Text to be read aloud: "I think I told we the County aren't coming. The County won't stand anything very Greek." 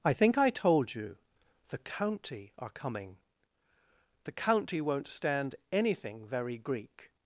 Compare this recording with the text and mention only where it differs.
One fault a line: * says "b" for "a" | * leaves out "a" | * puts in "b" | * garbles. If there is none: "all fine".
* says "you" for "we"
* says "are" for "aren't"